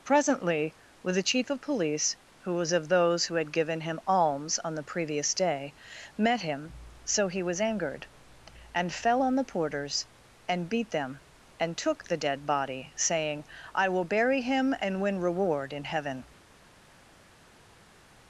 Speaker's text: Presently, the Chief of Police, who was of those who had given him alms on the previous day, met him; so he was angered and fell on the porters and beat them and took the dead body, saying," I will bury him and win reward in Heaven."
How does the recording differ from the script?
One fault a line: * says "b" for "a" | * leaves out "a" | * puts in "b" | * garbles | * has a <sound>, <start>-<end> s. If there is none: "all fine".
* puts in "with"